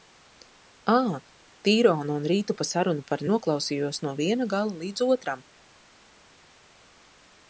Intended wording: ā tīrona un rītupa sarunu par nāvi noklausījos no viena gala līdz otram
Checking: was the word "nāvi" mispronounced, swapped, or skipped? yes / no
yes